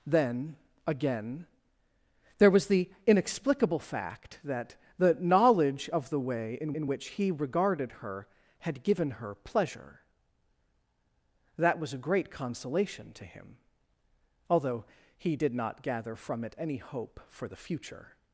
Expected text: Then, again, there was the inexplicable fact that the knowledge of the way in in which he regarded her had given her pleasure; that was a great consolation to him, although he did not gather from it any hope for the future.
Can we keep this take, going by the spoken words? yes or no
yes